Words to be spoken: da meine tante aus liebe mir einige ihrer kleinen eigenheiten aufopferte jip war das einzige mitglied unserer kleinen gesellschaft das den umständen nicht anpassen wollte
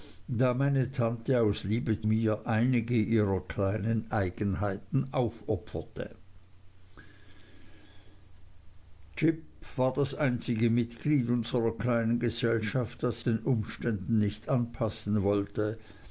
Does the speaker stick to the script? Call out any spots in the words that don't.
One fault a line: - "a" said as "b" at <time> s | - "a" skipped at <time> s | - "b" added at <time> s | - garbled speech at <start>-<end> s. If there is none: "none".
none